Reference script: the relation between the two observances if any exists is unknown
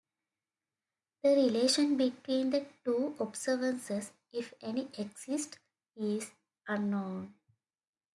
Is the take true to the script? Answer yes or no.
yes